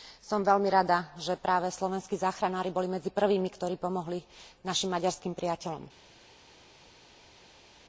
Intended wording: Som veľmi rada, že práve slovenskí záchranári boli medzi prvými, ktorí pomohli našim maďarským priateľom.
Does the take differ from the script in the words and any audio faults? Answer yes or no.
no